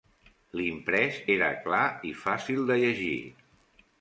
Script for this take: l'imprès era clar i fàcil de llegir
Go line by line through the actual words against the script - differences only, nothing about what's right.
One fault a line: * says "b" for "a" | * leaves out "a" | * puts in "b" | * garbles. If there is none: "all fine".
all fine